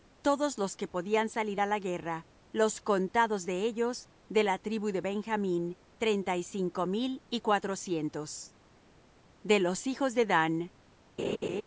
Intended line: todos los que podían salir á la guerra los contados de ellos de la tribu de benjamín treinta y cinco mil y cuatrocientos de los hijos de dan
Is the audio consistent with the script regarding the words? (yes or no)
yes